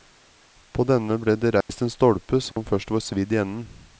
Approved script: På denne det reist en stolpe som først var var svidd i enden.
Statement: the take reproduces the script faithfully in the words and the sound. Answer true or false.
false